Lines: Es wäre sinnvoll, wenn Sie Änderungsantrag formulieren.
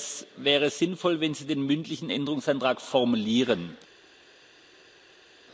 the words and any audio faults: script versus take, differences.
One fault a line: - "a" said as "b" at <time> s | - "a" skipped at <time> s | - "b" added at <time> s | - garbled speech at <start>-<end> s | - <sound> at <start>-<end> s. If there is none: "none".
- "den mündlichen" added at 1.4 s